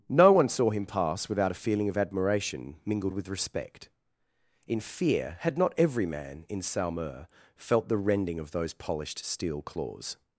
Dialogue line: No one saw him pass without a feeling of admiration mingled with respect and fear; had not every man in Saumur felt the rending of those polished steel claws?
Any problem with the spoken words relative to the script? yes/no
yes